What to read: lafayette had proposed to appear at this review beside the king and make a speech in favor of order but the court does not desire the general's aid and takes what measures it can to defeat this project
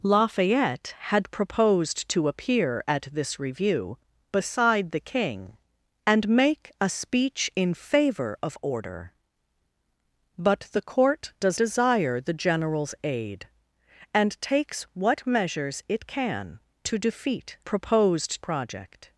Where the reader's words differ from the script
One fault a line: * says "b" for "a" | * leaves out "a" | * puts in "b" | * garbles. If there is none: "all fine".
* leaves out "not"
* says "proposed" for "this"